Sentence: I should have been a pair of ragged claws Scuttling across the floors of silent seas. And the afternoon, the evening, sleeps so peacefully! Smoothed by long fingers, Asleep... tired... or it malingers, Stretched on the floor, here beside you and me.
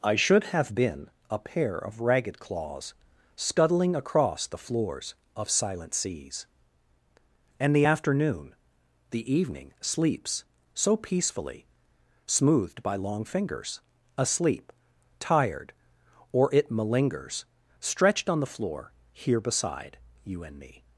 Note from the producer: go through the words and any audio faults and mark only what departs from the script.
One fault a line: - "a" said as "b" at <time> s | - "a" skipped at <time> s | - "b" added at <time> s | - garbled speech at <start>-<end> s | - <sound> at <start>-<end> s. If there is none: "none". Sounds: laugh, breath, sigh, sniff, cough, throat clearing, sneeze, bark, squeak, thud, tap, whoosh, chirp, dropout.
none